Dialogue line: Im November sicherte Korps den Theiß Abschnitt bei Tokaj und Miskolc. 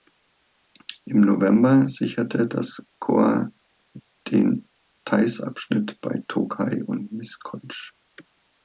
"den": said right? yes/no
yes